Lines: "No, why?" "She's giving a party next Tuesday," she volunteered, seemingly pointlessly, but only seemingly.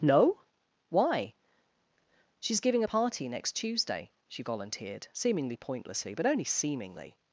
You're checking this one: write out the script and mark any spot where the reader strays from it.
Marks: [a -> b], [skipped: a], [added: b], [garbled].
"No, why?" "She's giving a party next Tuesday," she volunteered, seemingly pointlessly, but only seemingly.